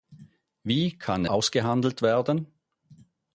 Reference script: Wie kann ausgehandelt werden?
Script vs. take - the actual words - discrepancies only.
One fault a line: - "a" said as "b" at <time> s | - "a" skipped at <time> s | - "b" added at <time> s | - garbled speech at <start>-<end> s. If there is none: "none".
none